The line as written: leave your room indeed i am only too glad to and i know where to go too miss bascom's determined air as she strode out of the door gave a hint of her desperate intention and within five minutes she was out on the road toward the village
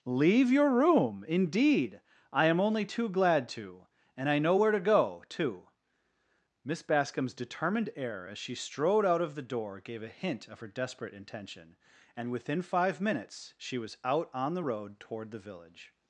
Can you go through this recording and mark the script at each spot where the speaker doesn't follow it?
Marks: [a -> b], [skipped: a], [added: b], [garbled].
leave your room indeed i am only too glad to and i know where to go too miss bascom's determined air as she strode out of the door gave a hint of her desperate intention and within five minutes she was out on the road toward the village